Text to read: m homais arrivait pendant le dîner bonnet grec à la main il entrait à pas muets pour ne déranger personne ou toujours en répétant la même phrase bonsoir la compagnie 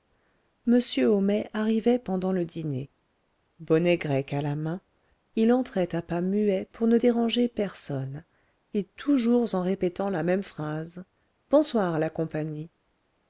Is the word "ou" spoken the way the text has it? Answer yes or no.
no